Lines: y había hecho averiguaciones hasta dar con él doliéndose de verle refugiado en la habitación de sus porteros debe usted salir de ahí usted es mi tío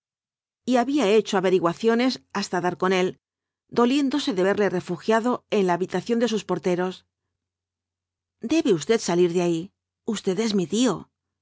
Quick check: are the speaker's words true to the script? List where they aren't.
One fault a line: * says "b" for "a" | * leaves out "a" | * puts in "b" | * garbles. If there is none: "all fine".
all fine